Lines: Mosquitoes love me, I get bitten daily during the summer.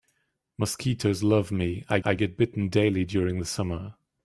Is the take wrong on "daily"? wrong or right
right